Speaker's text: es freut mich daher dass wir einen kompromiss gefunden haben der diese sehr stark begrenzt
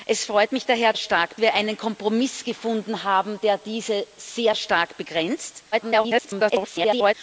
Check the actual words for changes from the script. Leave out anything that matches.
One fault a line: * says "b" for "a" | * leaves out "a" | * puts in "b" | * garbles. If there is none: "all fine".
* says "stark" for "dass"
* garbles